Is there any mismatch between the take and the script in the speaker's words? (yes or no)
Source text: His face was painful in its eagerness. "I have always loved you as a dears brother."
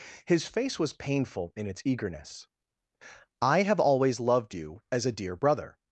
yes